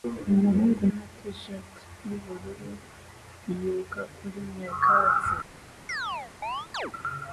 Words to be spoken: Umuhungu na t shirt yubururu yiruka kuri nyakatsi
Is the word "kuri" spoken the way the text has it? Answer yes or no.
yes